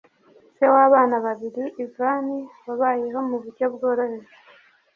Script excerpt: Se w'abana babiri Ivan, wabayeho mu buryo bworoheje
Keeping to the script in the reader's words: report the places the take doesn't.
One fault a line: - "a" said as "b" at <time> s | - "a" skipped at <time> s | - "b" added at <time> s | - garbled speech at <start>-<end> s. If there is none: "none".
none